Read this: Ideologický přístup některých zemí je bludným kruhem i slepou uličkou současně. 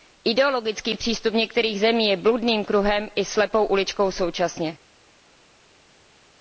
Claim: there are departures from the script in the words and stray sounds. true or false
false